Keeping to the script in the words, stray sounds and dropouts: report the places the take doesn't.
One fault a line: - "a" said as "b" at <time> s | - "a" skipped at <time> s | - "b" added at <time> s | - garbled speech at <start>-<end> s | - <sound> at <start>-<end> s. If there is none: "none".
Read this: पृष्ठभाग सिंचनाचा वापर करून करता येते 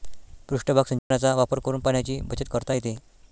- dropout at 1.0-1.1 s
- "पाण्याची बचत" added at 1.8 s